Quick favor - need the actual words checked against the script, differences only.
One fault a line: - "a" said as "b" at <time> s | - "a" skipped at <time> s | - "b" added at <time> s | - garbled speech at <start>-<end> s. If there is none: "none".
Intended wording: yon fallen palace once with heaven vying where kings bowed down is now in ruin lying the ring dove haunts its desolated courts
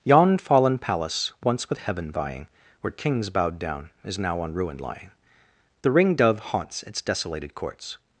- "in" said as "on" at 4.4 s